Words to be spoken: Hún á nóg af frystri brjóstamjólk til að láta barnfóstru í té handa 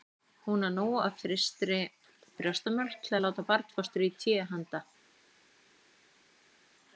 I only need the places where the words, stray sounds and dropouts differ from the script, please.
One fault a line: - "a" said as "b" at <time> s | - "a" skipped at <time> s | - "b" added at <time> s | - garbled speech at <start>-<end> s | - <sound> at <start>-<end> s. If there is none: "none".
none